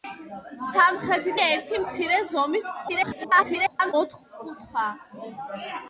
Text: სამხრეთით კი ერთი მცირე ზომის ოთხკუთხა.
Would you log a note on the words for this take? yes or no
yes